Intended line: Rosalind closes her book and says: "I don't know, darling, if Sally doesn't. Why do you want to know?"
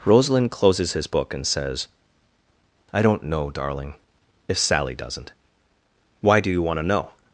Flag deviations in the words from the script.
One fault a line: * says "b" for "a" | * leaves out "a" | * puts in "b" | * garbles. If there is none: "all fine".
* says "his" for "her"